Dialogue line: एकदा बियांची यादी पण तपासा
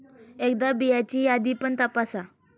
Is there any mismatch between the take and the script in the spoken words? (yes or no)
no